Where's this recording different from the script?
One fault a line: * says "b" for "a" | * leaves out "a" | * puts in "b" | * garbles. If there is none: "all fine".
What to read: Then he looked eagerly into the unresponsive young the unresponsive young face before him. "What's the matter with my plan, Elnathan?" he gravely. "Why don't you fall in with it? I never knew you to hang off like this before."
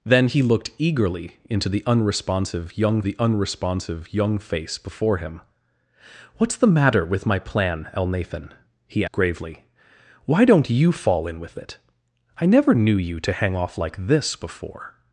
all fine